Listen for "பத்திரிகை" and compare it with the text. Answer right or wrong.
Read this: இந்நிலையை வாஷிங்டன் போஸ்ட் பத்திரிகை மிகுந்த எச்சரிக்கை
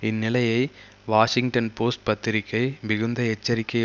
right